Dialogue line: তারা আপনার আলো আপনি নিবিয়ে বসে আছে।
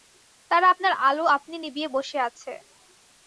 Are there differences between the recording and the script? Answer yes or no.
no